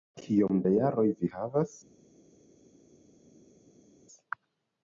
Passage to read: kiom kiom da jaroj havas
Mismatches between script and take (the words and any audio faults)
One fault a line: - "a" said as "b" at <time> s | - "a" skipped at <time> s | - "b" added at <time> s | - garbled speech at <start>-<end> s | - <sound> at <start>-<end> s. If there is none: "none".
- "kiom" skipped at 0.6 s
- "vi" added at 1.2 s